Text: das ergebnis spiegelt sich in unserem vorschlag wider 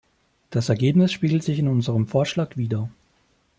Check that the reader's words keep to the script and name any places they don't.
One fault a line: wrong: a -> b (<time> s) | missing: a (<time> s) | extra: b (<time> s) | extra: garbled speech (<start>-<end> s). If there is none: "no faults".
no faults